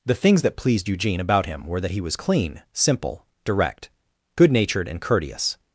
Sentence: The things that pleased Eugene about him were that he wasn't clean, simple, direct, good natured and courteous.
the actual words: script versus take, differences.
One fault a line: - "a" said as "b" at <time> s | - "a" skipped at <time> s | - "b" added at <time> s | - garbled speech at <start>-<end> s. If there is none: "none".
- "wasn't" said as "was" at 2.0 s